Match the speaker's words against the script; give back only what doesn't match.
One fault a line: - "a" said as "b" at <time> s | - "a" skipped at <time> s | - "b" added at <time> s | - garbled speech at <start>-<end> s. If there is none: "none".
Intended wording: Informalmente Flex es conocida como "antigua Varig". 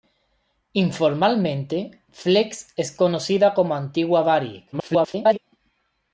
- garbled speech at 4.7-5.4 s